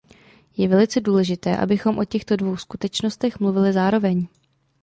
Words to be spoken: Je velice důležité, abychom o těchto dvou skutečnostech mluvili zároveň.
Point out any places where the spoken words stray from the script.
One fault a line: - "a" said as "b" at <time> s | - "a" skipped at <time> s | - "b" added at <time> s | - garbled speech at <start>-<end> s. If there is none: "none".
none